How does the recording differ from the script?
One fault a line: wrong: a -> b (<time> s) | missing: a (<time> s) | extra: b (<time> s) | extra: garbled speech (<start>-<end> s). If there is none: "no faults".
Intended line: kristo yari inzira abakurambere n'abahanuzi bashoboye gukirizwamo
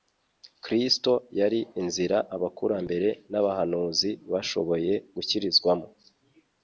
no faults